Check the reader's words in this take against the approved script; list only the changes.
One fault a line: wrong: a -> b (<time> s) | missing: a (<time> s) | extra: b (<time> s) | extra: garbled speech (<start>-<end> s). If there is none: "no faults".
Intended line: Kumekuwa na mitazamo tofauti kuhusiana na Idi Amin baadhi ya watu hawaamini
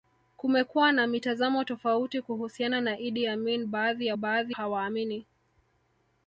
wrong: watu -> baadhi (4.1 s)